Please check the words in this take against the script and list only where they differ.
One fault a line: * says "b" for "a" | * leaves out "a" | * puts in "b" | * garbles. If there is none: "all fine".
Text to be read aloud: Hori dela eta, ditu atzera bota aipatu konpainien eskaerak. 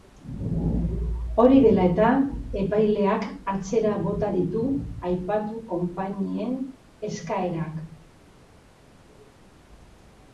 * says "epaileak" for "ditu"
* puts in "ditu"